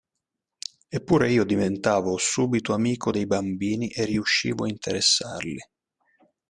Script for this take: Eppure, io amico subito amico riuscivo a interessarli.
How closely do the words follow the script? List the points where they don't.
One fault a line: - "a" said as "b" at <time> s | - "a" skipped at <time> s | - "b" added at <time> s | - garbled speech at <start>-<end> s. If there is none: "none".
- "amico" said as "diventavo" at 1.4 s
- "dei bambini e" added at 3.1 s